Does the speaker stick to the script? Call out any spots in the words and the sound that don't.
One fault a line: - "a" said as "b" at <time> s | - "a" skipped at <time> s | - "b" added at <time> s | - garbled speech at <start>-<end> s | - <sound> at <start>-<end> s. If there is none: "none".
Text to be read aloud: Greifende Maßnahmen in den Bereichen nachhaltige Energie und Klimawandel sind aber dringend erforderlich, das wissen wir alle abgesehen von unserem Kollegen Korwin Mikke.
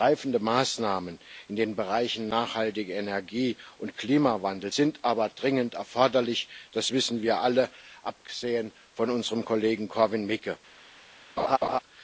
- laugh at 11.4-11.8 s